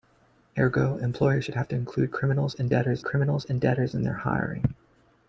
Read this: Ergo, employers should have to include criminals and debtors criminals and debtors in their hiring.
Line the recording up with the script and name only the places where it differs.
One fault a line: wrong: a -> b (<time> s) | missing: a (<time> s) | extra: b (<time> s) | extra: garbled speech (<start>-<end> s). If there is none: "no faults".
no faults